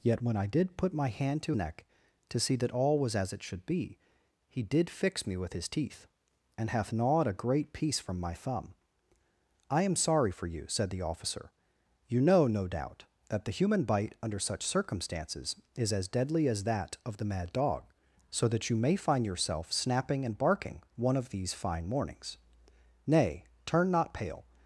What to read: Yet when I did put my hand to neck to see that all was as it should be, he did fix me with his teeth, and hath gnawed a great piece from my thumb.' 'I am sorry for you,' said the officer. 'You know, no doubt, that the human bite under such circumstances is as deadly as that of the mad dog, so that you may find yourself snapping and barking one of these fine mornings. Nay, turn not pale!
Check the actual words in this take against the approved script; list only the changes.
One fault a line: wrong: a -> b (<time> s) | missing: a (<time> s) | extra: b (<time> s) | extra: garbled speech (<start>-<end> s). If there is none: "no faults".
no faults